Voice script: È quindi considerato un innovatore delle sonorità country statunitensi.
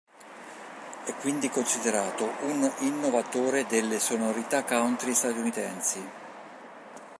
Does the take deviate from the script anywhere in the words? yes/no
no